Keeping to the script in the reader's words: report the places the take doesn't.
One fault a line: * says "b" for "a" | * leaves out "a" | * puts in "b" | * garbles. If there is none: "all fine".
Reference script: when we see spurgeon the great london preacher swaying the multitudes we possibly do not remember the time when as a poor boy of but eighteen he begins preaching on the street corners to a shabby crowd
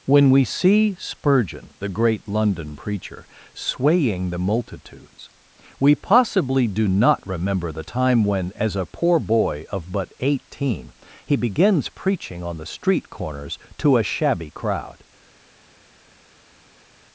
all fine